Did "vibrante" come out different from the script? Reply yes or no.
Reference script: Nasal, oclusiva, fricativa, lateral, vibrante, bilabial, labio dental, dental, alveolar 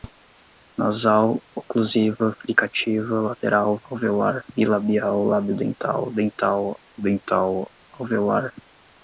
yes